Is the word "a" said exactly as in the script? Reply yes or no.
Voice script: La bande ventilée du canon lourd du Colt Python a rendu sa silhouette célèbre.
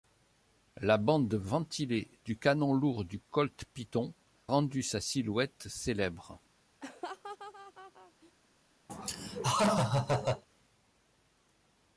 no